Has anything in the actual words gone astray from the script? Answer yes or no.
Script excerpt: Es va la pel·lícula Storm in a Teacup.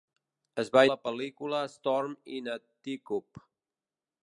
no